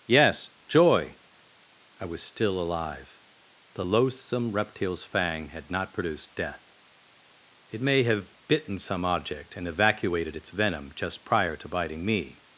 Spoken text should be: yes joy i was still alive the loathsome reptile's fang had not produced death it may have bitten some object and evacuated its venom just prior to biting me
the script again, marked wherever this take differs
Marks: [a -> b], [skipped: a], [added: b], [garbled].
yes joy i was still alive the loathsome reptile's fang had not produced death it may have bitten some object and evacuated its venom just prior to biting me